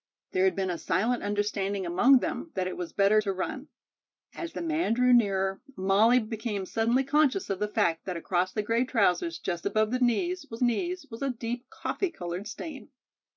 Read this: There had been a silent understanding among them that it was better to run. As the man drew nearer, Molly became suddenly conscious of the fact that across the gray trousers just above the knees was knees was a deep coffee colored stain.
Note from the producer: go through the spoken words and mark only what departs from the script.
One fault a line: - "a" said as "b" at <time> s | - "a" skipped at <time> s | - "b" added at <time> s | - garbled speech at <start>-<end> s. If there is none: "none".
none